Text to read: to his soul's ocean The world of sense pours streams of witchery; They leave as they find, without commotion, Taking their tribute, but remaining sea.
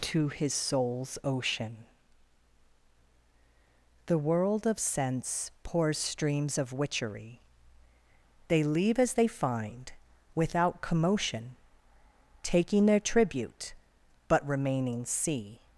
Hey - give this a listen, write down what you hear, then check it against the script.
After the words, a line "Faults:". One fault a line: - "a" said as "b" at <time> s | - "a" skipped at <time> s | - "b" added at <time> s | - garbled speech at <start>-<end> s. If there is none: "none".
to his soul's ocean The world of sense pours streams of witchery; They leave as they find, without commotion, Taking their tribute, but remaining sea.
Faults:
none